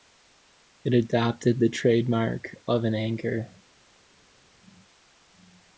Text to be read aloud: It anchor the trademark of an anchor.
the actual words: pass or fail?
fail